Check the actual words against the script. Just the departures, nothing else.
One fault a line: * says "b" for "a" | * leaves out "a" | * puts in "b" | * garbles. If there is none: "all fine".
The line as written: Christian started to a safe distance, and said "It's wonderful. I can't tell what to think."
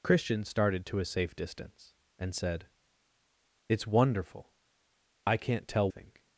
* leaves out "what to"